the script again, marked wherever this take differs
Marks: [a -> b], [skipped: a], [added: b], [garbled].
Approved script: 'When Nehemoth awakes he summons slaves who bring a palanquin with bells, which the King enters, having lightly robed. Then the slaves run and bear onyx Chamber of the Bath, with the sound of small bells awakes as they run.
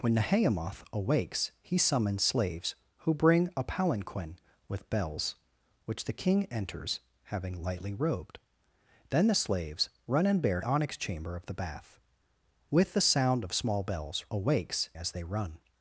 'When Nehemoth awakes he summons slaves who bring a palanquin with bells, which the King enters, having lightly robed. Then the slaves run and bear onyx Chamber of the Bath, with the sound of small bells awakes as they run.